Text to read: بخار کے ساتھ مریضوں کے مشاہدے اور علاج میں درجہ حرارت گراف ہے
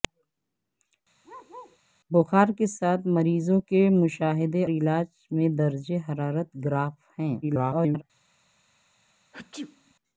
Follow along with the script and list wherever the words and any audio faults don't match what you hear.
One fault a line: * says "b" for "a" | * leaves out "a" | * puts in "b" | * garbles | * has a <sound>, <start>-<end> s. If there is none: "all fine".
* has a bark, 1.2-1.8 s
* leaves out "اور"
* garbles
* has a sneeze, 9.3-9.9 s